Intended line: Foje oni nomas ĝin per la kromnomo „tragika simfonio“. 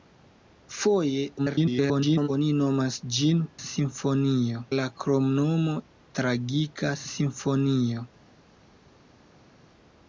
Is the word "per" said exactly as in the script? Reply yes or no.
no